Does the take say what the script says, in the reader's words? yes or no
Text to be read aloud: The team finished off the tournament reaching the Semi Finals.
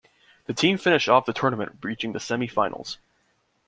yes